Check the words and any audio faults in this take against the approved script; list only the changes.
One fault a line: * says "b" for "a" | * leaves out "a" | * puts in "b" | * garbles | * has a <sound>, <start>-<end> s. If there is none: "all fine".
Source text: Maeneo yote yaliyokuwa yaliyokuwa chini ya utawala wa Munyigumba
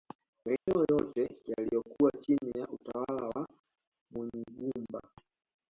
* has a dropout, 0.6-0.7 s
* leaves out "yaliyokuwa"